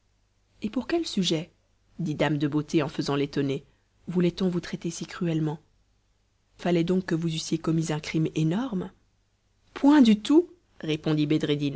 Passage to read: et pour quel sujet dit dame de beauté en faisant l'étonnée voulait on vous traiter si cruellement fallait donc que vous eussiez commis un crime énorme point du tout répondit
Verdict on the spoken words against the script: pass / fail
pass